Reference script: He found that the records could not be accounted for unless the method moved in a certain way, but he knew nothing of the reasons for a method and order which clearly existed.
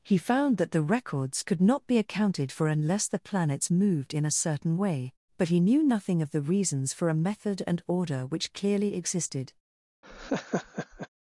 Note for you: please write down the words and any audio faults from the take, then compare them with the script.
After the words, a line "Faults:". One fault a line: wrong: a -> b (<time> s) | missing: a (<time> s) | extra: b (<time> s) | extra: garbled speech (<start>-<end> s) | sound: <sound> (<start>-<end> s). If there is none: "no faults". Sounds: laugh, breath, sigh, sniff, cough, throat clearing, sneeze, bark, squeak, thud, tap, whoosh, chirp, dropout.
He found that the records could not be accounted for unless the planets moved in a certain way, but he knew nothing of the reasons for a method and order which clearly existed.
Faults:
wrong: method -> planets (3.2 s)
sound: laugh (10.0-11.1 s)